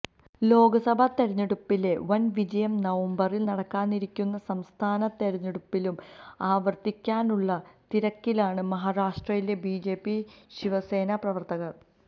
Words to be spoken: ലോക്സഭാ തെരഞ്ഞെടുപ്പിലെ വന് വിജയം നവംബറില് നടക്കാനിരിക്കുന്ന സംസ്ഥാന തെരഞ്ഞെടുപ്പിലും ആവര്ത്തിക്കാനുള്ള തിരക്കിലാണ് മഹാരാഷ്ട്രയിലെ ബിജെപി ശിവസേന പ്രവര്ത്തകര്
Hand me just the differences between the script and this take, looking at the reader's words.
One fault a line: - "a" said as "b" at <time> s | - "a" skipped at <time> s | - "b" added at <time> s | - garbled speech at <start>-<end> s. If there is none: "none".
none